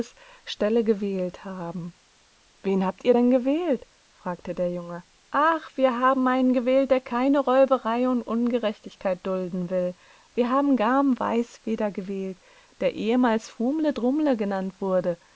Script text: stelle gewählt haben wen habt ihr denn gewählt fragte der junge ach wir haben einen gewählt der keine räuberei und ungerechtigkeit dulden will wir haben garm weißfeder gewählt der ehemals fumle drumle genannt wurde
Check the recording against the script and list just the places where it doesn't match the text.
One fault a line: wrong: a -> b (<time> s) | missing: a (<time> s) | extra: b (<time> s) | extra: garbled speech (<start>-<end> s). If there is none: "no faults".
no faults